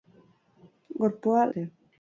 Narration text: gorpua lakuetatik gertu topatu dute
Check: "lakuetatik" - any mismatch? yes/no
yes